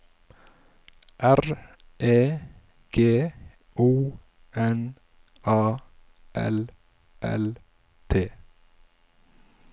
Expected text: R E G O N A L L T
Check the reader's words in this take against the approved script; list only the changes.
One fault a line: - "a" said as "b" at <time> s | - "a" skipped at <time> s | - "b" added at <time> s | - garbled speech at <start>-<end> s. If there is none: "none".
none